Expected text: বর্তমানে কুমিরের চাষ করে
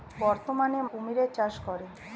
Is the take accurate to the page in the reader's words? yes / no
yes